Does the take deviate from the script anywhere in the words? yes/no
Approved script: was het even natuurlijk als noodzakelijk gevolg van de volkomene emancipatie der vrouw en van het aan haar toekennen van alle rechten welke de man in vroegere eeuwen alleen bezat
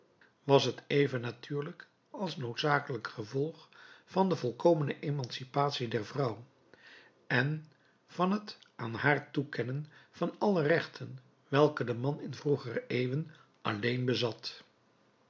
no